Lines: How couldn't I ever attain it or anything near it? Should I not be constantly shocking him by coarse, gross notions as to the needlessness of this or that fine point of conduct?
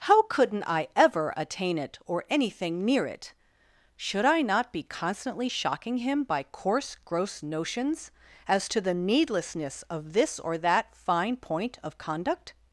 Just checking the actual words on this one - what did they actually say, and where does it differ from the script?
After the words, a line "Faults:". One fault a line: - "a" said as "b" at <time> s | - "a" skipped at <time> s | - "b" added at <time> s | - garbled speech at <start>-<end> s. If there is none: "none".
How couldn't I ever attain it or anything near it? Should I not be constantly shocking him by coarse, gross notions as to the needlessness of this or that fine point of conduct?
Faults:
none